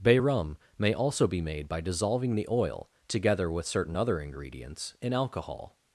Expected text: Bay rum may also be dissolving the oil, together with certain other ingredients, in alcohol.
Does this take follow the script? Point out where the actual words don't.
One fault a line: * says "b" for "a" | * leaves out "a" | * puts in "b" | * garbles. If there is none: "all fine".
* puts in "made by"